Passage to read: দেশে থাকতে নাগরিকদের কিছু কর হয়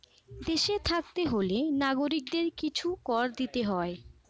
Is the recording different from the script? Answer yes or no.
yes